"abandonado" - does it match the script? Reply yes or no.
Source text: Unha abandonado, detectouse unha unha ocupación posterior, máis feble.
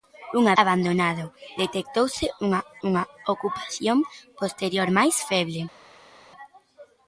yes